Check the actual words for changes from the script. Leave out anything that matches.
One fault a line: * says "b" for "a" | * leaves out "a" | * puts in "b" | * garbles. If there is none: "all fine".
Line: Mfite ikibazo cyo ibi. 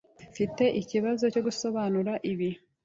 * puts in "gusobanura"